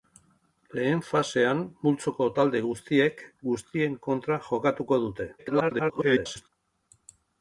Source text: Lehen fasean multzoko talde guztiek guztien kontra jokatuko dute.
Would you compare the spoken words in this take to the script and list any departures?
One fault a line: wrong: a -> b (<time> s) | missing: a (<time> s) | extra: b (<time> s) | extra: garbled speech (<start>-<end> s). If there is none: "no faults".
extra: garbled speech (5.4-6.5 s)